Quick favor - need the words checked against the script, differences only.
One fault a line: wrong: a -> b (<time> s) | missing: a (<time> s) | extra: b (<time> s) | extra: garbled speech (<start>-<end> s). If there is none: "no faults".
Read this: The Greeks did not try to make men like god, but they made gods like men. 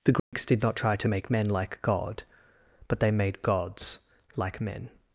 no faults